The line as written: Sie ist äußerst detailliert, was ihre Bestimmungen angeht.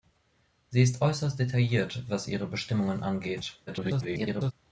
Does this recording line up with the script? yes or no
no